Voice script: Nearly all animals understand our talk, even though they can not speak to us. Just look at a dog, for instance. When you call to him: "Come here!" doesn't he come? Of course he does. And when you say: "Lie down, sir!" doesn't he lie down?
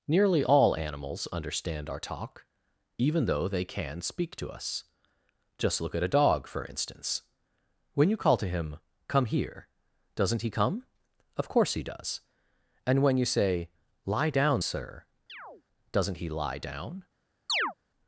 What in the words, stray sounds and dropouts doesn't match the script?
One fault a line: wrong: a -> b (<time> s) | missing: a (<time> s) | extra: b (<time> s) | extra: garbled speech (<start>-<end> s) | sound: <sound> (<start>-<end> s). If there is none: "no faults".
missing: not (4.0 s)
sound: chirp (15.3-15.6 s)
sound: chirp (17.5-17.7 s)